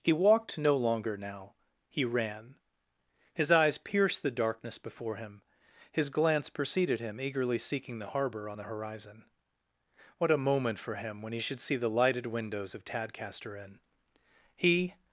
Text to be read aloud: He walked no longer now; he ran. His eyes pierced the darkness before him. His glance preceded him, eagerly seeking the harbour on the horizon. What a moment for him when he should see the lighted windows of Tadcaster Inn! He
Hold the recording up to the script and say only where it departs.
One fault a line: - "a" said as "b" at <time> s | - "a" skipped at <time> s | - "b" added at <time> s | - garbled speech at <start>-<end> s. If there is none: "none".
none